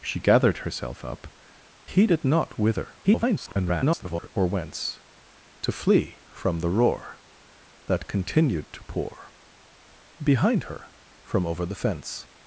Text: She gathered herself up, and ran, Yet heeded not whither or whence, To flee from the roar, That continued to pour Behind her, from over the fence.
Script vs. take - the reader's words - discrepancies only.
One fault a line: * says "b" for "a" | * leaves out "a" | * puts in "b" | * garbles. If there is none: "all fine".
* leaves out "and ran Yet"
* garbles